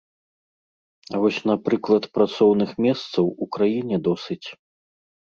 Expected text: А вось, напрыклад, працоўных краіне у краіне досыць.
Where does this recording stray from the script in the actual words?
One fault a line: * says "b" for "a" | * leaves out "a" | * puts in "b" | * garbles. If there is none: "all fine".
* says "месцаў" for "краіне"